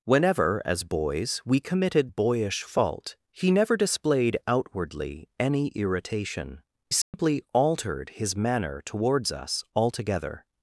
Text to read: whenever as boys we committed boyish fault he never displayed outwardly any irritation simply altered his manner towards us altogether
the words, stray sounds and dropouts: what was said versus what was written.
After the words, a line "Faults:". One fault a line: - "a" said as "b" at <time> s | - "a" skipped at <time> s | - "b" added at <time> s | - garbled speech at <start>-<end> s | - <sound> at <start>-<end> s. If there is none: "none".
whenever as boys we committed boyish fault he never displayed outwardly any irritation simply altered his manner towards us altogether
Faults:
- dropout at 7.0-7.1 s